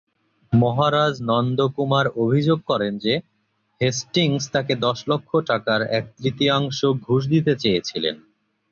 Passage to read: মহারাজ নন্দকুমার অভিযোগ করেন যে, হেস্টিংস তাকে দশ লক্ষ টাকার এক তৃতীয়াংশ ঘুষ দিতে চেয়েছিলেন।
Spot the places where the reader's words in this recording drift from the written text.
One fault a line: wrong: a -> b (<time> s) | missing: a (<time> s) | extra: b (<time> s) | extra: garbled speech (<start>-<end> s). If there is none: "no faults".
no faults